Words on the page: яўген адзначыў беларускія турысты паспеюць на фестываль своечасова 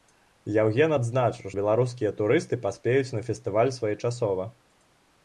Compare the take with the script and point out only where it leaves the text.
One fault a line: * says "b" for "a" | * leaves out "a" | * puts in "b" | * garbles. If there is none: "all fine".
all fine